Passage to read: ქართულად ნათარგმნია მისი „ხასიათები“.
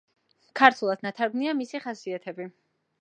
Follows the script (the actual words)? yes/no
yes